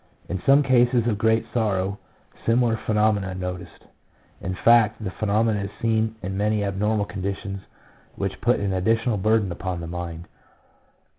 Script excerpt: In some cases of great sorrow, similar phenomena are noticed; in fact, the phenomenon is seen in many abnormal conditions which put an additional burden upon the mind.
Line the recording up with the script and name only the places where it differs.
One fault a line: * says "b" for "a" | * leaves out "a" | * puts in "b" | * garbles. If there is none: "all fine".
all fine